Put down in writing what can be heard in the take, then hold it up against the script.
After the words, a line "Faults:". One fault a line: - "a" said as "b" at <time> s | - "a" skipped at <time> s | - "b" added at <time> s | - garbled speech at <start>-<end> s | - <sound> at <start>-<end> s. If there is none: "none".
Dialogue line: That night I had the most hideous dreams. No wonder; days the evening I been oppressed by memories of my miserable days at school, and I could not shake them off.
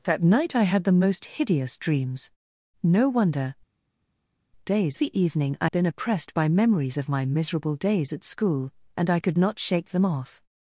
That night I had the most hideous dreams. No wonder; days the evening I been oppressed by memories of my miserable days at school, and I could not shake them off.
Faults:
none